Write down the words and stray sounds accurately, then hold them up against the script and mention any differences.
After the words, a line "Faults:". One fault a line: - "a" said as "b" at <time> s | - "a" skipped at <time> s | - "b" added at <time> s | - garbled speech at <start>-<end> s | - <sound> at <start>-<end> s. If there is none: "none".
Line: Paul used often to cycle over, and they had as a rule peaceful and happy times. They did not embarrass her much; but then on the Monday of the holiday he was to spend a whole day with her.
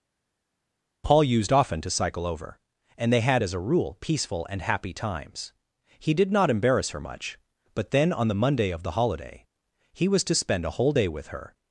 Paul used often to cycle over, and they had as a rule peaceful and happy times. He did not embarrass her much; but then on the Monday of the holiday he was to spend a whole day with her.
Faults:
- "They" said as "He" at 6.0 s